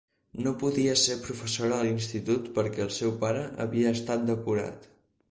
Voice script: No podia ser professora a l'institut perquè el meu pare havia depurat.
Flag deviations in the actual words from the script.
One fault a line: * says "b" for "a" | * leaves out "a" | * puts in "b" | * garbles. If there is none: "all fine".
* says "seu" for "meu"
* puts in "estat"